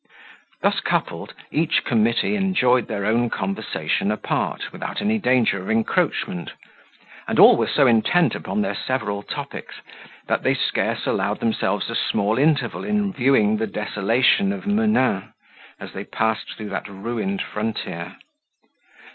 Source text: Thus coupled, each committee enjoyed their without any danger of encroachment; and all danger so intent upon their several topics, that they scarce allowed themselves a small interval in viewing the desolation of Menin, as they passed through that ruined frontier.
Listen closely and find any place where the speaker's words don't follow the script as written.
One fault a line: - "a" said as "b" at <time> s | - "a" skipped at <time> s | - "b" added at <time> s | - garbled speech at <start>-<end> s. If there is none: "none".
- "own conversation apart" added at 3.0 s
- "danger" said as "were" at 7.5 s